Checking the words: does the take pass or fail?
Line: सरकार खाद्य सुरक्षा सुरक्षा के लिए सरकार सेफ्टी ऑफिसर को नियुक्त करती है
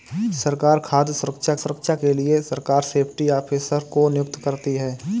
pass